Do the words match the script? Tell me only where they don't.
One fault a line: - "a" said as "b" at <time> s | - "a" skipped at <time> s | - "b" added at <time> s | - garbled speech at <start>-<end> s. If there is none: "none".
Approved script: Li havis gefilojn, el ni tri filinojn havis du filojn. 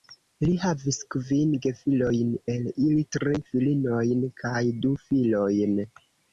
- "kvin" added at 1.1 s
- "ni" said as "ili" at 2.8 s
- "havis" said as "kaj" at 4.4 s